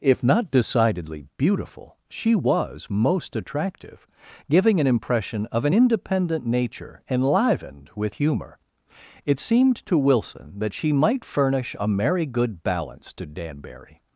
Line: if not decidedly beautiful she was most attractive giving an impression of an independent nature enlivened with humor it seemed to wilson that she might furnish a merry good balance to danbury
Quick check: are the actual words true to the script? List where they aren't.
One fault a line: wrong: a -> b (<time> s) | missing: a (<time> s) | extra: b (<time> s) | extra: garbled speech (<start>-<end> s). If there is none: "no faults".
no faults